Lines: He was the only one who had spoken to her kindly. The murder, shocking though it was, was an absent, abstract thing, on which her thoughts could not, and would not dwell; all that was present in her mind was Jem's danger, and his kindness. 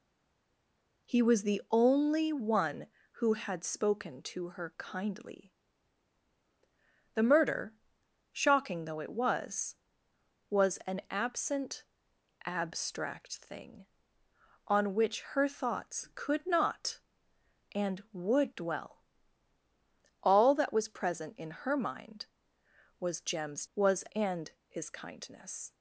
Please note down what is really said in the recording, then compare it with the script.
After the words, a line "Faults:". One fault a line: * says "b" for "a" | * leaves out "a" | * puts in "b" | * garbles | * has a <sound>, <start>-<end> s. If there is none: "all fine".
He was the only one who had spoken to her kindly. The murder, shocking though it was, was an absent, abstract thing, on which her thoughts could not, and would dwell; all that was present in her mind was Jem's was, and his kindness.
Faults:
* leaves out "not"
* says "was" for "danger"